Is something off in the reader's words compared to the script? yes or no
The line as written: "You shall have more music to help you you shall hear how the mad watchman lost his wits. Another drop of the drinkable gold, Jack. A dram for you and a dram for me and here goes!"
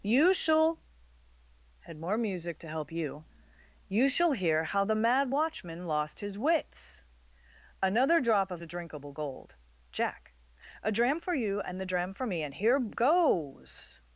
yes